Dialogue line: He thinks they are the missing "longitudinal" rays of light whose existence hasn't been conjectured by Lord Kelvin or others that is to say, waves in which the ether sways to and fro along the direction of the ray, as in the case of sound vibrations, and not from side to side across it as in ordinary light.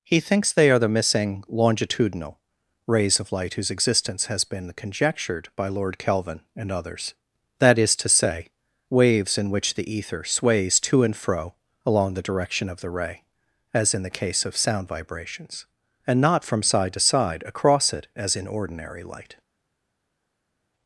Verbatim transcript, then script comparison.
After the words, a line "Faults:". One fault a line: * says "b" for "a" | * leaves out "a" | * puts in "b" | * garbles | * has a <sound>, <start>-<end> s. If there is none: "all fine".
He thinks they are the missing "longitudinal" rays of light whose existence has been conjectured by Lord Kelvin and others that is to say, waves in which the ether sways to and fro along the direction of the ray, as in the case of sound vibrations, and not from side to side across it as in ordinary light.
Faults:
* says "has" for "hasn't"
* says "and" for "or"